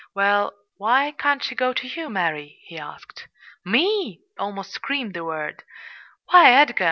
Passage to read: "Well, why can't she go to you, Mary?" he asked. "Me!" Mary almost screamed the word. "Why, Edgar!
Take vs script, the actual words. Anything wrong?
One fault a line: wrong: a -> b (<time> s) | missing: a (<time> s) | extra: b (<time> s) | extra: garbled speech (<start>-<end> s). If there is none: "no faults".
missing: Mary (4.2 s)